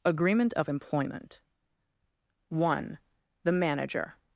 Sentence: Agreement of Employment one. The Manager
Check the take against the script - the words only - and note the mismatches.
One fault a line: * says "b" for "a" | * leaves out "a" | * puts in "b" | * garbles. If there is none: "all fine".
all fine